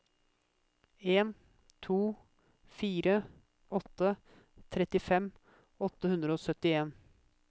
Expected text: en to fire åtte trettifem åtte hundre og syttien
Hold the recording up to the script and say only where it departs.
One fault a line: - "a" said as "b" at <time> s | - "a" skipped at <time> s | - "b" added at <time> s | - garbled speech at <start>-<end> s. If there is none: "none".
none